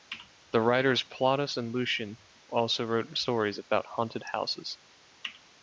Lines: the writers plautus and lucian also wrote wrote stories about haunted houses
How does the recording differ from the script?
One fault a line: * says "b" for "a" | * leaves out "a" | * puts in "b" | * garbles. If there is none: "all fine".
* leaves out "wrote"